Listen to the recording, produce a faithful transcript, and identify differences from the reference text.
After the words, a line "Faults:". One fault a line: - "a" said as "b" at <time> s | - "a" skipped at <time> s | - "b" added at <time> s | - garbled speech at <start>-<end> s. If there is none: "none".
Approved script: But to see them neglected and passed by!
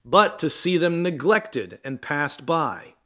But to see them neglected and passed by!
Faults:
none